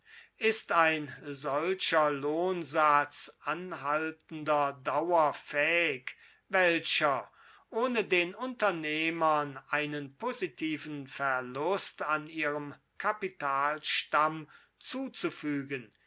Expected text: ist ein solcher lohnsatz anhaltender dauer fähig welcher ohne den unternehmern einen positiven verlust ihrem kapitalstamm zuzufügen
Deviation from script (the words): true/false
true